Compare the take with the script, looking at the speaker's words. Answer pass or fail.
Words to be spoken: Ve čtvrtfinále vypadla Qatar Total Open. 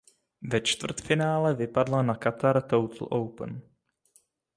fail